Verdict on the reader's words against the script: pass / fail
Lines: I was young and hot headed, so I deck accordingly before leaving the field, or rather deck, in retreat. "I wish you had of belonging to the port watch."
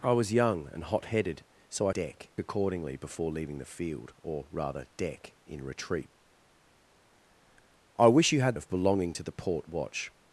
pass